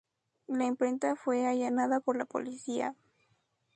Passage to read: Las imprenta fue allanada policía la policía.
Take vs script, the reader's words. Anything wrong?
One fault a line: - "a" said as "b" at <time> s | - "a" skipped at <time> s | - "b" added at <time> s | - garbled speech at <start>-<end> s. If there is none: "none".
- "Las" said as "La" at 0.5 s
- "policía" said as "por" at 2.0 s